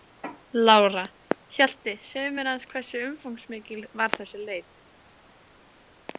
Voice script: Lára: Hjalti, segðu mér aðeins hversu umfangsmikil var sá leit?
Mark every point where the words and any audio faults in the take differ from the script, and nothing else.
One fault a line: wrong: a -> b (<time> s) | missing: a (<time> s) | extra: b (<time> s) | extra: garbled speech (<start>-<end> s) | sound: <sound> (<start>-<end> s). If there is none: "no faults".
wrong: sá -> þessi (4.2 s)